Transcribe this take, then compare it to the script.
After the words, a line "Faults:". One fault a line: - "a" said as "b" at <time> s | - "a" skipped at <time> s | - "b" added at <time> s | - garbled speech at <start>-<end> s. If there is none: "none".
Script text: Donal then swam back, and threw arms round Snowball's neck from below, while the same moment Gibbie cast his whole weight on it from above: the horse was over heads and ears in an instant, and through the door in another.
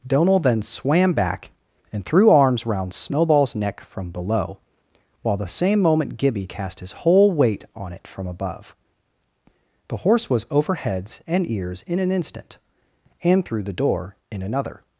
Donal then swam back, and threw arms round Snowball's neck from below, while the same moment Gibbie cast his whole weight on it from above: the horse was over heads and ears in an instant, and through the door in another.
Faults:
none